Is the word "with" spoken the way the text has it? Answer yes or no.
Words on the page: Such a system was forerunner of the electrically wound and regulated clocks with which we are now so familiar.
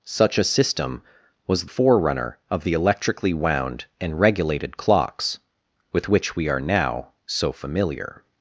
yes